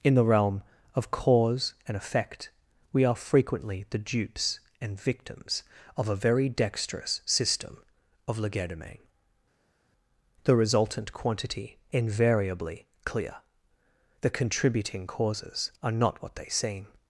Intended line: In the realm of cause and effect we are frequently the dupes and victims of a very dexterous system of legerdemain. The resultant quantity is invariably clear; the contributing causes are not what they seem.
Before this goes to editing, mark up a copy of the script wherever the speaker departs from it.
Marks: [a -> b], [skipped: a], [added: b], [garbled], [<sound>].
In the realm of cause and effect we are frequently the dupes and victims of a very dexterous system of legerdemain. The resultant quantity [skipped: is] invariably clear; the contributing causes are not what they seem.